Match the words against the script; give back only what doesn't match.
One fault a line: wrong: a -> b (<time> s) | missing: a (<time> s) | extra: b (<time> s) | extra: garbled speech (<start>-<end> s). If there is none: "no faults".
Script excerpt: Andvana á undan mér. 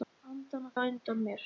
no faults